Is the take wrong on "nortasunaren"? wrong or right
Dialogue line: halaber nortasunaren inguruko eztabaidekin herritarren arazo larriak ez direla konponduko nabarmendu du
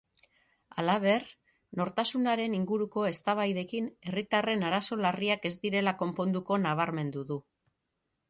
right